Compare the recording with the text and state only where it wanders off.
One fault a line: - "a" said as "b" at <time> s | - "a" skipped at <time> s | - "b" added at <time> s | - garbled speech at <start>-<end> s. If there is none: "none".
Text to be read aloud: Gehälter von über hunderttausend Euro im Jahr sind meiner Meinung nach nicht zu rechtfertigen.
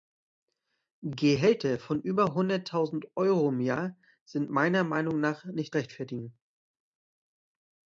- "zu" skipped at 5.8 s